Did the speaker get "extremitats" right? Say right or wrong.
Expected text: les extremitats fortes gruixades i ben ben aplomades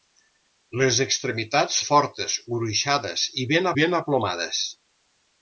right